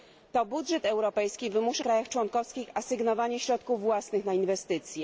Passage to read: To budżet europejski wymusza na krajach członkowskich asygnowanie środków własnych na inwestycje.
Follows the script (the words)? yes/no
no